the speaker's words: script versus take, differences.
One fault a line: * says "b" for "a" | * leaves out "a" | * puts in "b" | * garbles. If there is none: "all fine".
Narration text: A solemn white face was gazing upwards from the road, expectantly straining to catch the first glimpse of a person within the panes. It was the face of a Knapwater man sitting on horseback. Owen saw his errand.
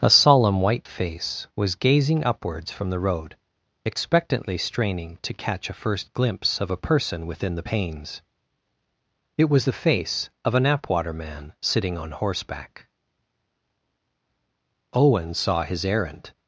* says "a" for "the"